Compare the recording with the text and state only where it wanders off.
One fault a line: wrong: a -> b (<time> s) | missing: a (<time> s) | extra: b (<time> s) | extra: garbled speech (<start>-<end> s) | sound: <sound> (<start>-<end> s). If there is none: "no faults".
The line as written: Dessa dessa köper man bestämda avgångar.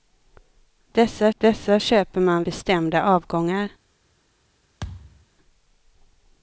sound: thud (4.8-5.3 s)